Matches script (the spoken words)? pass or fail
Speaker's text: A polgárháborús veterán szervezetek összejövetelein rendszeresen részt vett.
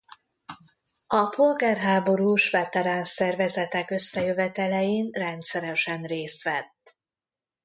pass